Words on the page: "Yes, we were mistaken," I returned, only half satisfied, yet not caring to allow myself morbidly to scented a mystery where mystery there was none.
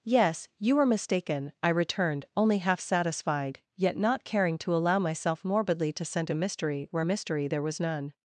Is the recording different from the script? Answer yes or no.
yes